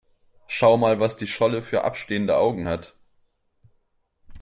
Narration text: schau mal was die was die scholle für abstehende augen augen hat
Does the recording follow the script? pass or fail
fail